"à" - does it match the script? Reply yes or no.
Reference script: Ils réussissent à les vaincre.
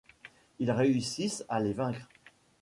yes